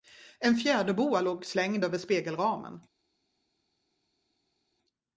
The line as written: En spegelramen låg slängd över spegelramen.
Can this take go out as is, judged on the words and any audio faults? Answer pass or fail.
fail